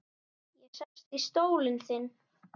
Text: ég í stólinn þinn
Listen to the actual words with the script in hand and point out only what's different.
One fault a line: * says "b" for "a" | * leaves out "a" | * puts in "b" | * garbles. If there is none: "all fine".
* puts in "sest"